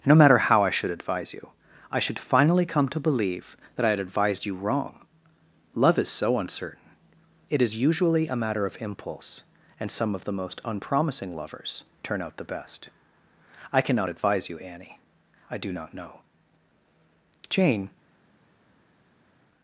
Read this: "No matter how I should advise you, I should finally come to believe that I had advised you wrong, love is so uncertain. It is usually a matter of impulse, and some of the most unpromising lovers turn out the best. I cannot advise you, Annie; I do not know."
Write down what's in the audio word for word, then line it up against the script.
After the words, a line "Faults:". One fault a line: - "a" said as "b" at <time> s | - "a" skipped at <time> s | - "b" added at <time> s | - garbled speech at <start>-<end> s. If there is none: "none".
"No matter how I should advise you, I should finally come to believe that I had advised you wrong, love is so uncertain. It is usually a matter of impulse, and some of the most unpromising lovers turn out the best. I cannot advise you, Annie; I do not know." Jane
Faults:
- "Jane" added at 17.5 s